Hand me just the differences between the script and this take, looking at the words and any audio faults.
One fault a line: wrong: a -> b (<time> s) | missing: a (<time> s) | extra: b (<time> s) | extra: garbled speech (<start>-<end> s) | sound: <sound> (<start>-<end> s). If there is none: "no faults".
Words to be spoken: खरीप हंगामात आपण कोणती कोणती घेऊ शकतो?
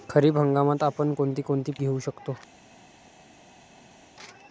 no faults